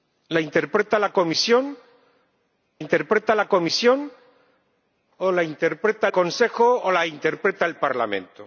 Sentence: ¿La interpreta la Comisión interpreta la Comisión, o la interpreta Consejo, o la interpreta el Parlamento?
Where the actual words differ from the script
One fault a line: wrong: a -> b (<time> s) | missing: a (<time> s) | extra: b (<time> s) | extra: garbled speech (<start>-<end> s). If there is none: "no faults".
no faults